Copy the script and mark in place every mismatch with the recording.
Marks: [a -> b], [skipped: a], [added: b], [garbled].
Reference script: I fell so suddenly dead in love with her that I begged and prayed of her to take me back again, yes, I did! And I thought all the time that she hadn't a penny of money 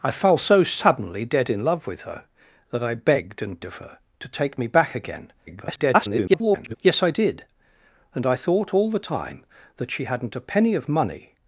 I fell so suddenly dead in love with her that I begged and [skipped: prayed] of her to take me back again, [garbled] yes, I did! And I thought all the time that she hadn't a penny of money